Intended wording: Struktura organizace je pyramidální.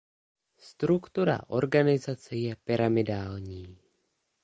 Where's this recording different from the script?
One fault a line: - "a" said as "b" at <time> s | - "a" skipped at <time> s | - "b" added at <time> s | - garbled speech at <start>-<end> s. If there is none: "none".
none